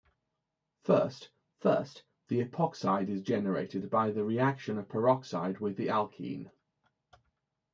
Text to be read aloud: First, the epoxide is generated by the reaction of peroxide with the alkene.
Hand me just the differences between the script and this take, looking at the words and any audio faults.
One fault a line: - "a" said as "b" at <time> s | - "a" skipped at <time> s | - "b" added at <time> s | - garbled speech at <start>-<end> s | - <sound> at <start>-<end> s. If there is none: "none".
- "first" added at 1.6 s